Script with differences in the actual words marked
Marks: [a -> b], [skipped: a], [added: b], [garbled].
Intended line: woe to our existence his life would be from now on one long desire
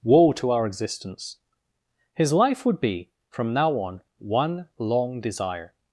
woe to our existence his life would be from now on one long desire